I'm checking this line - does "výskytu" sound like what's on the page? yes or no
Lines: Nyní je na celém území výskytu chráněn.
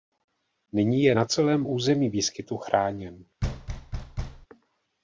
yes